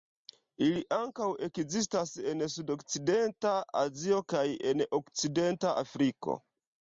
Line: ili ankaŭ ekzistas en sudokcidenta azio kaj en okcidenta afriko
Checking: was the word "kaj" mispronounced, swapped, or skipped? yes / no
no